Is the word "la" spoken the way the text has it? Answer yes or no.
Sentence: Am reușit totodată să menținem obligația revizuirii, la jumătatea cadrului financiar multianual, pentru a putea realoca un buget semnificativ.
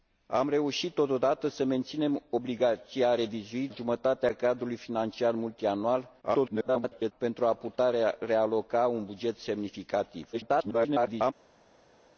no